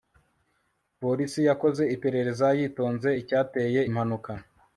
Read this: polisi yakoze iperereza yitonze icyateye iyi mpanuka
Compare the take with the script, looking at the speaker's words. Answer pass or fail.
fail